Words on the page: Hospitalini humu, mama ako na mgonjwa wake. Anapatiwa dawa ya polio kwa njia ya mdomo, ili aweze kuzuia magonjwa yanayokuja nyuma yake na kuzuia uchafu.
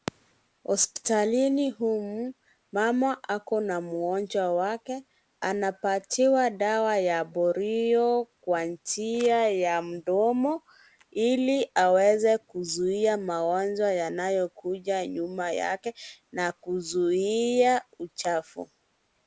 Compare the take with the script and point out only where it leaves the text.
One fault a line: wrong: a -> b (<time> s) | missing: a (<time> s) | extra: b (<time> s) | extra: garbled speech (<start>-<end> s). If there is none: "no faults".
no faults